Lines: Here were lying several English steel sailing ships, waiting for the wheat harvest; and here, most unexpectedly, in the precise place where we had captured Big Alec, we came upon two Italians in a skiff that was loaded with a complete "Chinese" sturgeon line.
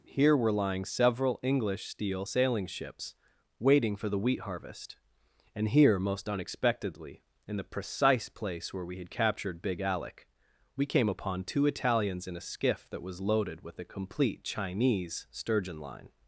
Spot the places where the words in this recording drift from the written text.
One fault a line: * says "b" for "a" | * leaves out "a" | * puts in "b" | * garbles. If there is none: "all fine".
all fine